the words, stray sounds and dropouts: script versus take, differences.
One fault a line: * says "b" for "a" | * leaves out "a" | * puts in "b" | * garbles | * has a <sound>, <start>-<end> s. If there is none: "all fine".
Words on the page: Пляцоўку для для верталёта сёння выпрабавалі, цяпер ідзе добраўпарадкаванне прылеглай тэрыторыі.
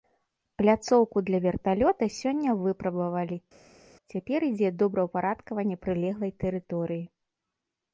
* leaves out "для"